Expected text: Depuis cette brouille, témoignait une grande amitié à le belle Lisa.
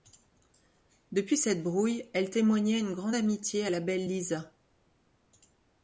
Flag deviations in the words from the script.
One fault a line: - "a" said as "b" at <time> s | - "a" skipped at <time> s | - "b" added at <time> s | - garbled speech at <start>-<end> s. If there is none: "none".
- "elle" added at 2.1 s
- "le" said as "la" at 3.7 s